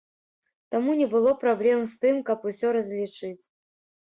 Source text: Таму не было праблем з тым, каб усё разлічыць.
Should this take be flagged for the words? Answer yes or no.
no